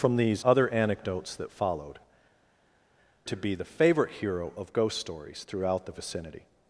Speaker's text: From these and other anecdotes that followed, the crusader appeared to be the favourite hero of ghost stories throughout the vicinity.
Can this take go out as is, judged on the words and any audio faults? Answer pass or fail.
fail